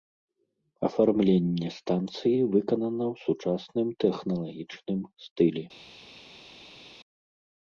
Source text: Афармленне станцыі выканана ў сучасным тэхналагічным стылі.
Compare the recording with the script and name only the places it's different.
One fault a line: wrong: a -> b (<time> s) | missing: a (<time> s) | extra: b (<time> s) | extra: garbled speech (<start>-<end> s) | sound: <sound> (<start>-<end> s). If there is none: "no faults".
no faults